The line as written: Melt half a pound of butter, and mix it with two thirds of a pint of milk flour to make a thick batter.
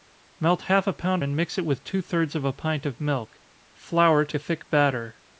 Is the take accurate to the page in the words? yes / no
no